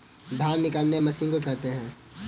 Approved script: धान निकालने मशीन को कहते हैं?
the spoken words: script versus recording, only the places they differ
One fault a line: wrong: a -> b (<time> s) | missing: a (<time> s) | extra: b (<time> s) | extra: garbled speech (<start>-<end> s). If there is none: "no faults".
no faults